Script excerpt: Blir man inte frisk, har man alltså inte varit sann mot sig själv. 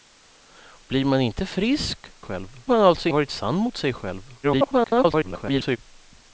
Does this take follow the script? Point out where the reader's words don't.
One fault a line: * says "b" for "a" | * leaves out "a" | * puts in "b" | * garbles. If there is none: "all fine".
* says "själv" for "har"
* leaves out "inte"
* garbles